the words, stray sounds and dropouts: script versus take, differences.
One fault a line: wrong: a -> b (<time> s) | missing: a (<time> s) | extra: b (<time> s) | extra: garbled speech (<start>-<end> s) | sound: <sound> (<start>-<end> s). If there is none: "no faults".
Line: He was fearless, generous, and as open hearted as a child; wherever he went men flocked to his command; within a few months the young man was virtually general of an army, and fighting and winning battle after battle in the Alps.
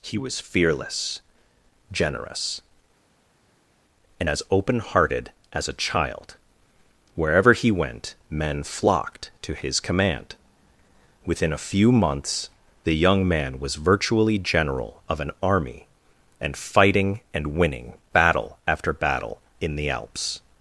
no faults